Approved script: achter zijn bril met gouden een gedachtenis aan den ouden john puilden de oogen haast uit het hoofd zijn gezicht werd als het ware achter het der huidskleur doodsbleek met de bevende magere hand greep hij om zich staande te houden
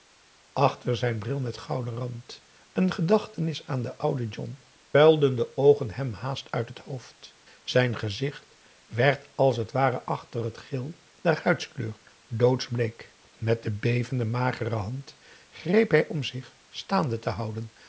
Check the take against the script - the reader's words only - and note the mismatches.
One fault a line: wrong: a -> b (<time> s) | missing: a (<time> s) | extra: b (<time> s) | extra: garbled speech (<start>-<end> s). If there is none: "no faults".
extra: rand (1.9 s)
extra: hem (5.9 s)
extra: geel (10.6 s)